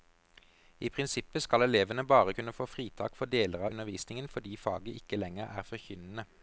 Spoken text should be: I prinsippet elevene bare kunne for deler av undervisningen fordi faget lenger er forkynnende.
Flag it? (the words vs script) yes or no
yes